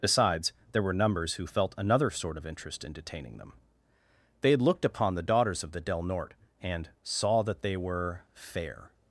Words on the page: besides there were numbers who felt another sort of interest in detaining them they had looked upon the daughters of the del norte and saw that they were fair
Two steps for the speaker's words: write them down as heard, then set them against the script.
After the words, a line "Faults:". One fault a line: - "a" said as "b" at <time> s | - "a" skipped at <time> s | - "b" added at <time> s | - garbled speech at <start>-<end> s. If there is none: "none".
besides there were numbers who felt another sort of interest in detaining them they had looked upon the daughters of the del norte and saw that they were fair
Faults:
none